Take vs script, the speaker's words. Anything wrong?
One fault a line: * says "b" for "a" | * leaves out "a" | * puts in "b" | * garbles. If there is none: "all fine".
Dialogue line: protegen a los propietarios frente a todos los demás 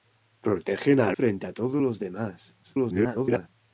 * leaves out "los propietarios"
* garbles